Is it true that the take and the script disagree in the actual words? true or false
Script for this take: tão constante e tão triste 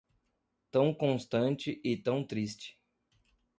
false